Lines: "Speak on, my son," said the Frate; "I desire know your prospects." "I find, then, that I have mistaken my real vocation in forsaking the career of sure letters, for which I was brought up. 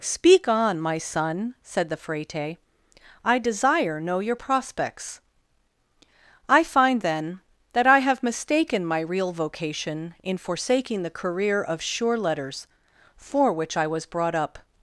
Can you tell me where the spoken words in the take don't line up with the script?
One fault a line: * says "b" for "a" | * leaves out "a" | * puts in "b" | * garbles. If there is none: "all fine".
all fine